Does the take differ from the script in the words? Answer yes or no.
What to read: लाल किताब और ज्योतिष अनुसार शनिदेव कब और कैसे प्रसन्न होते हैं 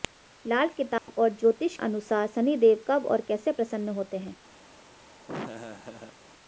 no